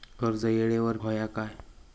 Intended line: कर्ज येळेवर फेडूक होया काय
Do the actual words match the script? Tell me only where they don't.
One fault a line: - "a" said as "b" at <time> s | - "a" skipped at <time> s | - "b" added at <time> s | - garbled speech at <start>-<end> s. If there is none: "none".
- "फेडूक" skipped at 1.0 s